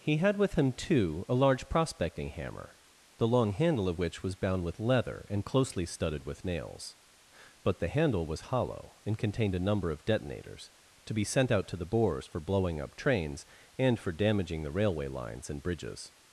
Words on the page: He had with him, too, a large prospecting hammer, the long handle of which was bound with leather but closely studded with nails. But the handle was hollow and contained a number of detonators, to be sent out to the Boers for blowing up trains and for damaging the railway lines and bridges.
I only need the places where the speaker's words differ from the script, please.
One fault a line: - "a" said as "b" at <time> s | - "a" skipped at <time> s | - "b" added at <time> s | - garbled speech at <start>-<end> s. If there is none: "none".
- "but" said as "and" at 5.3 s